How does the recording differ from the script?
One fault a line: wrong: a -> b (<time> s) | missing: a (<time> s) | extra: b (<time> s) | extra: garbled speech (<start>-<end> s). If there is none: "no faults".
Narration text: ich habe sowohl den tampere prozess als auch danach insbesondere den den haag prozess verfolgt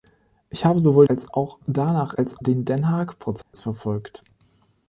missing: den tampere prozess (1.1 s)
wrong: insbesondere -> als (2.2 s)